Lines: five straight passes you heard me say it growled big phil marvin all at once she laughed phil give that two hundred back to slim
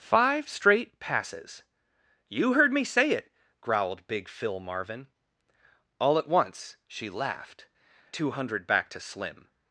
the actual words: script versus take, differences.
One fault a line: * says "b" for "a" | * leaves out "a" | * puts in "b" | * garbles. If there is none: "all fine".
* leaves out "phil give that"